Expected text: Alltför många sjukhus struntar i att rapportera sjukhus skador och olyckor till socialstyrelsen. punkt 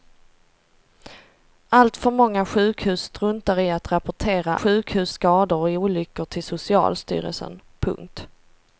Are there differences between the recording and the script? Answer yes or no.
no